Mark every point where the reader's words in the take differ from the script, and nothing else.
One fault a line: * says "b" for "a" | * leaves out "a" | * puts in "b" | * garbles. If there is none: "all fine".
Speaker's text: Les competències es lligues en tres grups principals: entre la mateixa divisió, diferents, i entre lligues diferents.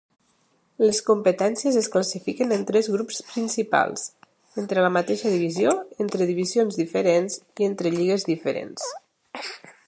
* says "classifiquen" for "lligues"
* puts in "entre divisions"